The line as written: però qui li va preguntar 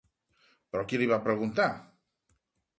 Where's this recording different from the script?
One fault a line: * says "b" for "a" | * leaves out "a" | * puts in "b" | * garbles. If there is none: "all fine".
all fine